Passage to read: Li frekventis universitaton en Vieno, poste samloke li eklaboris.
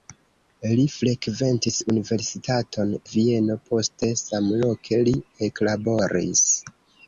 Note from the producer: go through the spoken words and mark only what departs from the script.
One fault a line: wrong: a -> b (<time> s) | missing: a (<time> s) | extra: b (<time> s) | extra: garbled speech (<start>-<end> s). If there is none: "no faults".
missing: en (2.9 s)